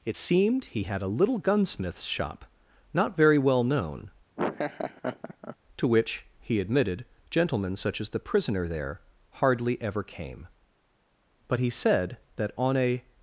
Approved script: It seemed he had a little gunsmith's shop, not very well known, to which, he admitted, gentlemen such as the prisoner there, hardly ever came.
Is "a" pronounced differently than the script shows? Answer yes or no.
no